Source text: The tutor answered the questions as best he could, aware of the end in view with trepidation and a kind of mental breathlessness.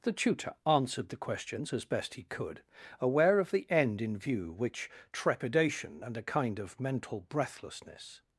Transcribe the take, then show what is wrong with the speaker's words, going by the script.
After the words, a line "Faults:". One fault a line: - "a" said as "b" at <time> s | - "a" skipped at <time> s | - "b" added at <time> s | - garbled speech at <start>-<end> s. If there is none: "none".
The tutor answered the questions as best he could, aware of the end in view which trepidation and a kind of mental breathlessness.
Faults:
- "with" said as "which" at 4.5 s